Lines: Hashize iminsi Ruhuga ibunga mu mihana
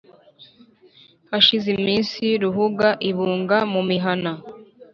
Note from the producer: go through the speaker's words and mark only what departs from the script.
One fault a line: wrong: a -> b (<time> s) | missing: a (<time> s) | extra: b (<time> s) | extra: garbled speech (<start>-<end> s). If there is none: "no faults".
no faults